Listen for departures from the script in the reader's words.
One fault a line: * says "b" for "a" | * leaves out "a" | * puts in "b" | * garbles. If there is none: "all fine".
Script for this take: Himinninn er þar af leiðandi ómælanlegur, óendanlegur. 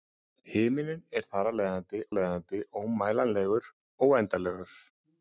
* puts in "leiðandi"